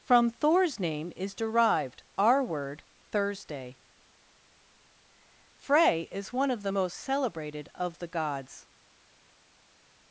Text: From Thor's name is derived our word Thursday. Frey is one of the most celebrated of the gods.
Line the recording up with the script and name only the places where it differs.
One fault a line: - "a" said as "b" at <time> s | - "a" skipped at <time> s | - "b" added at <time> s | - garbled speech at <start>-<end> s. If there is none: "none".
none